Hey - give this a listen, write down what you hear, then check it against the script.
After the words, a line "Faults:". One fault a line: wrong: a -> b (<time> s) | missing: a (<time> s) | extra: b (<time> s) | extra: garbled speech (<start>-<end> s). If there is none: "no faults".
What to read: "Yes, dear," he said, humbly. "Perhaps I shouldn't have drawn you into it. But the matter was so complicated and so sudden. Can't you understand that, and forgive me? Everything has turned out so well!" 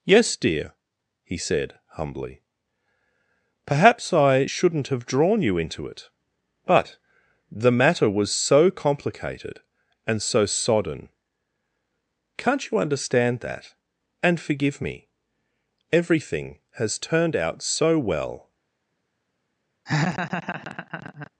"Yes, dear," he said, humbly. "Perhaps I shouldn't have drawn you into it. But the matter was so complicated and so sodden. Can't you understand that, and forgive me? Everything has turned out so well!"
Faults:
wrong: sudden -> sodden (10.4 s)